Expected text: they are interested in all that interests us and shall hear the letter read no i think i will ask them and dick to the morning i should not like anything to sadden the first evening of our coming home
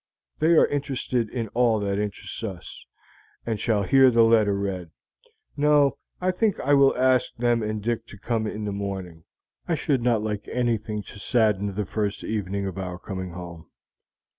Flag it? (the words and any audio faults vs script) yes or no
yes